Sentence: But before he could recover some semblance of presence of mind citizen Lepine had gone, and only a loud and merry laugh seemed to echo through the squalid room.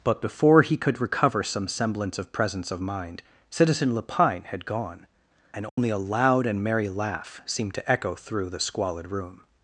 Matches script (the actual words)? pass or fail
pass